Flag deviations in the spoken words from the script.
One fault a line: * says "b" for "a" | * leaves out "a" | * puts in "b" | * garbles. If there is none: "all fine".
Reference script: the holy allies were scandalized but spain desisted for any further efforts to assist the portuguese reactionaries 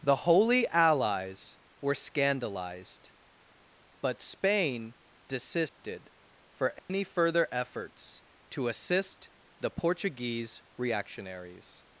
all fine